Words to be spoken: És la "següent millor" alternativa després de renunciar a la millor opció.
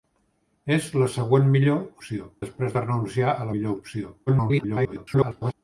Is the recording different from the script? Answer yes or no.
yes